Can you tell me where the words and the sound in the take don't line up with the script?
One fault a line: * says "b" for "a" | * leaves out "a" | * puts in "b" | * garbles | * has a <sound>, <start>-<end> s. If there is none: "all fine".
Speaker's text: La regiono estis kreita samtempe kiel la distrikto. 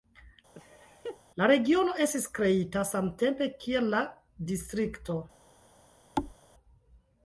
* has a laugh, 0.5-1.2 s
* has a thud, 6.2-6.4 s